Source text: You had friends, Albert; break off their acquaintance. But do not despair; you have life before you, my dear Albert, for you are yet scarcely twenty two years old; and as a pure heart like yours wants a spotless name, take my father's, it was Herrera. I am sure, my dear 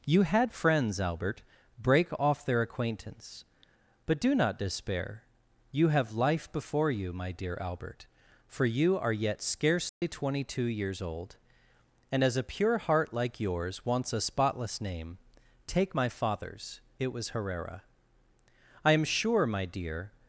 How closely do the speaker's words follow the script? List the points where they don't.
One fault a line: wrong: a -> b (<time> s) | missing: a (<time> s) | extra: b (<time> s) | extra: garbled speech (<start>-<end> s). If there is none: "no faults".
no faults